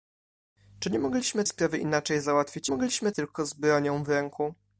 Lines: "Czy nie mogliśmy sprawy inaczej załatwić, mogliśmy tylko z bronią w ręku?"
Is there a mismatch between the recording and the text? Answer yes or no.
no